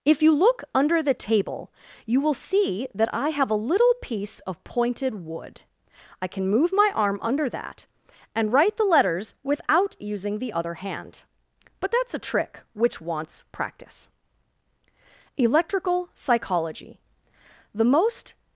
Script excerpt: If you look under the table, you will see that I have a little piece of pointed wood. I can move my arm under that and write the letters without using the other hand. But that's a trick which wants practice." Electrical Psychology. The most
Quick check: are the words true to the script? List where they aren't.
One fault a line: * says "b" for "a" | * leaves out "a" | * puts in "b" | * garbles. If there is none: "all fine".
all fine